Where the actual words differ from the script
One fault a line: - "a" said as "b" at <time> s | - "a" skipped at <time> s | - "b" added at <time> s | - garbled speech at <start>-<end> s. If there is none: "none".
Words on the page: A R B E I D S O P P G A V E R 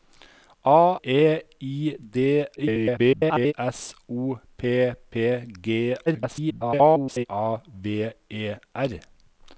- "R B" skipped at 1.0 s
- garbled speech at 2.6-3.5 s
- garbled speech at 6.1-7.3 s